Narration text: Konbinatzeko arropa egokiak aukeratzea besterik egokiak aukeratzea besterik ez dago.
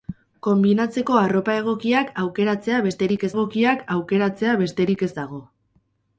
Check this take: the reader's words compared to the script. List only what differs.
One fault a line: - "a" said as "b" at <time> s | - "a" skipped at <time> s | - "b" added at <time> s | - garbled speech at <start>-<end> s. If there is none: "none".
none